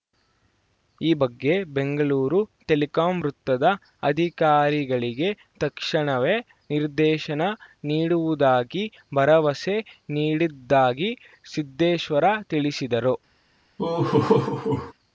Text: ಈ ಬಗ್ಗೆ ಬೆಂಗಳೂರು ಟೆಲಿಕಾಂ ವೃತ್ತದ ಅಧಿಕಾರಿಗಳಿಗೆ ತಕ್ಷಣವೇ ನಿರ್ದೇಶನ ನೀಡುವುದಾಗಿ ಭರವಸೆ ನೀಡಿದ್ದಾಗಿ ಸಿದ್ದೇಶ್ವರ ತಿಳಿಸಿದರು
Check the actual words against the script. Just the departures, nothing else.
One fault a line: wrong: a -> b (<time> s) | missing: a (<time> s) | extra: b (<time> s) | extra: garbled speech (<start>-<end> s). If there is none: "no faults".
no faults